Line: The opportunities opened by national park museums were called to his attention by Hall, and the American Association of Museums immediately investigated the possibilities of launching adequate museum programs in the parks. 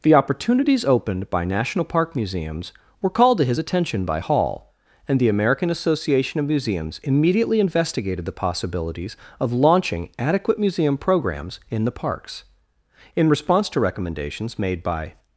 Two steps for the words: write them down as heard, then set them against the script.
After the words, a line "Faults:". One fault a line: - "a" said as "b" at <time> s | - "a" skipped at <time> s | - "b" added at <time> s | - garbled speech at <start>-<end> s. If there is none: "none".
The opportunities opened by national park museums were called to his attention by Hall, and the American Association of Museums immediately investigated the possibilities of launching adequate museum programs in the parks. In response to recommendations made by
Faults:
- "In response to recommendations made by" added at 13.2 s